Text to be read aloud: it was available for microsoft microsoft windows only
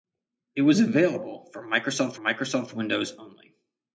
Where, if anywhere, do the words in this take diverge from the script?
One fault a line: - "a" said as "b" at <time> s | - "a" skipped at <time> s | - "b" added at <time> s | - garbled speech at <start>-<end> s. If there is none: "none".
none